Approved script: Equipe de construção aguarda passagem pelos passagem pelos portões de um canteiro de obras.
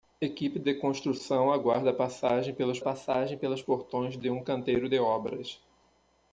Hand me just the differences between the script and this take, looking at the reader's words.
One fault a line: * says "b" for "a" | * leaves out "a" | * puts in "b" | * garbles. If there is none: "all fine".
all fine